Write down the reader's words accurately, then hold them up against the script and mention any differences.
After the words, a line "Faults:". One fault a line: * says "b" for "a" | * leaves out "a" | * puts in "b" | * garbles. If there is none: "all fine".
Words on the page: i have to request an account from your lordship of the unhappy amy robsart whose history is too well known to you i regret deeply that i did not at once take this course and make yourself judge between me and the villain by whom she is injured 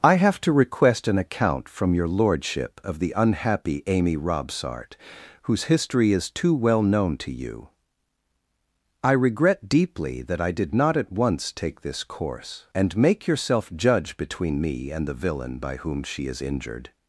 i have to request an account from your lordship of the unhappy amy robsart whose history is too well known to you i regret deeply that i did not at once take this course and make yourself judge between me and the villain by whom she is injured
Faults:
all fine